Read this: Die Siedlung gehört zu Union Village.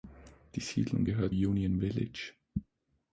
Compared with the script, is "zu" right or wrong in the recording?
wrong